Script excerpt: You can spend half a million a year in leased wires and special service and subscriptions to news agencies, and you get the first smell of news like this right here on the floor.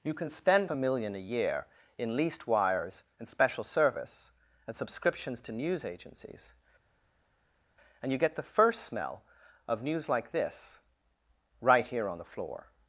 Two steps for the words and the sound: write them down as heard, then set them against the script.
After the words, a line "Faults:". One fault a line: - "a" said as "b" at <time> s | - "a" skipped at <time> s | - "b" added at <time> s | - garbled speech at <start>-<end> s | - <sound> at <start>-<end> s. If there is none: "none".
You can spend a million a year in leased wires and special service and subscriptions to news agencies, and you get the first smell of news like this right here on the floor.
Faults:
- "half" skipped at 0.7 s